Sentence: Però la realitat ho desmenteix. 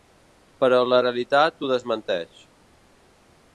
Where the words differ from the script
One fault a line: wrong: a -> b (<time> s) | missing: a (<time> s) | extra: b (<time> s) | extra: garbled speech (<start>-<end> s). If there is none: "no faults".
no faults